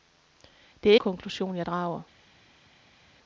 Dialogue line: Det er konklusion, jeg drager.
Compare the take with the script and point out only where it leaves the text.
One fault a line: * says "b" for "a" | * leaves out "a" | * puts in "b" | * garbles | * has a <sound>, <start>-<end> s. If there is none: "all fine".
all fine